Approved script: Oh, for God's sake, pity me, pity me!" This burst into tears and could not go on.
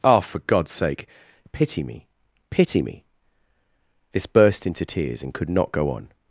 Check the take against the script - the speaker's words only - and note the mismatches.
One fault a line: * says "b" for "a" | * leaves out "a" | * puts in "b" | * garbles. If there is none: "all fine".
all fine